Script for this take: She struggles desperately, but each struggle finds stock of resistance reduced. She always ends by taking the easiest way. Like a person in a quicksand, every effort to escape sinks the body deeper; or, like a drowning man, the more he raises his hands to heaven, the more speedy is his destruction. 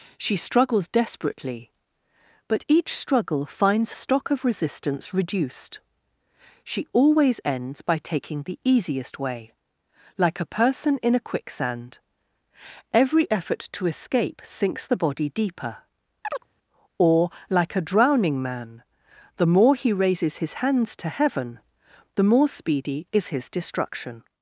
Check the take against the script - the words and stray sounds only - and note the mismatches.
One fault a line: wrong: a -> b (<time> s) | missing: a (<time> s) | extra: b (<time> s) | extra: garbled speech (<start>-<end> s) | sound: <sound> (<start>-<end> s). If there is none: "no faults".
sound: chirp (16.2-16.5 s)